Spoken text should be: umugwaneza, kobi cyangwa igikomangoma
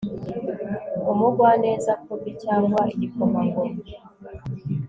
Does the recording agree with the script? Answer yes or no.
yes